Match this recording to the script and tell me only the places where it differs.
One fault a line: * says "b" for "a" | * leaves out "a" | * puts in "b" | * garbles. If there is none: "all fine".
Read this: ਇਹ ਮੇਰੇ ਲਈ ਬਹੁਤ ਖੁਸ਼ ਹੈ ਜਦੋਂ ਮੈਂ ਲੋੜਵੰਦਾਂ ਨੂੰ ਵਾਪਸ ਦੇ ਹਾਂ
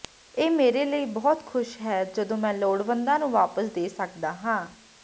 * puts in "ਸਕਦਾ"